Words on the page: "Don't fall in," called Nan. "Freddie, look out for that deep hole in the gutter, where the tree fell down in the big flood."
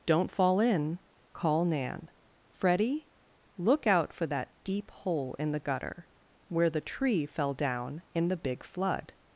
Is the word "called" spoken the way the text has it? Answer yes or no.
no